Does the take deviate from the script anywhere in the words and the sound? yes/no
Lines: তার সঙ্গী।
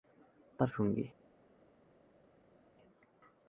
no